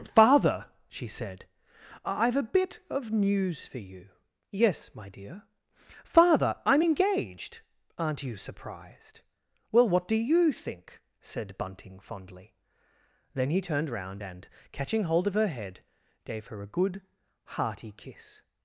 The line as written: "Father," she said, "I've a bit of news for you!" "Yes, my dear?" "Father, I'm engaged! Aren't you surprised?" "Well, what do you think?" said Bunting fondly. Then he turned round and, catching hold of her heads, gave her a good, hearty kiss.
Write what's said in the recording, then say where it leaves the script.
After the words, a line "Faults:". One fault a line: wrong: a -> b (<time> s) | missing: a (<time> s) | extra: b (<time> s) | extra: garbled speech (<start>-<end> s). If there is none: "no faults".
"Father," she said, "I've a bit of news for you!" "Yes, my dear?" "Father, I'm engaged! Aren't you surprised?" "Well, what do you think?" said Bunting fondly. Then he turned round and, catching hold of her head, gave her a good, hearty kiss.
Faults:
wrong: heads -> head (15.5 s)